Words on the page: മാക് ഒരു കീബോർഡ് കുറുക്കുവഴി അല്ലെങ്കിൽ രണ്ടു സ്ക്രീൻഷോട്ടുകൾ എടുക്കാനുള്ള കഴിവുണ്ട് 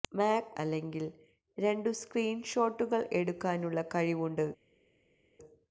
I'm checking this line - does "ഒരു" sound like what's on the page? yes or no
no